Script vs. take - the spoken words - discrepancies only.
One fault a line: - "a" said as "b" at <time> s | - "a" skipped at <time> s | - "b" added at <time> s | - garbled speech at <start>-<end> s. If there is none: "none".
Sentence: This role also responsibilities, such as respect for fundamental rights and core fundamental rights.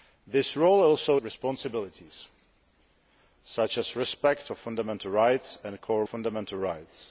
none